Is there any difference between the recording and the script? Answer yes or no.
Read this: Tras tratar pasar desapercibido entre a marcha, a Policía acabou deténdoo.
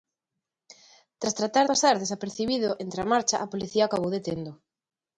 no